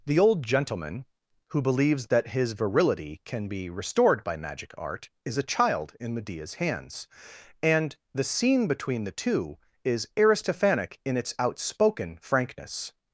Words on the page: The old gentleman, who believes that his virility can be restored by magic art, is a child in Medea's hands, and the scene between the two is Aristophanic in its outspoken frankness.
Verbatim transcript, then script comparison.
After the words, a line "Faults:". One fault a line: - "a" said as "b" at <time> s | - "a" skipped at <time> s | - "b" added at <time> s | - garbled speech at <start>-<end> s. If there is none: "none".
The old gentleman, who believes that his virility can be restored by magic art, is a child in Medea's hands, and the scene between the two is Aristophanic in its outspoken frankness.
Faults:
none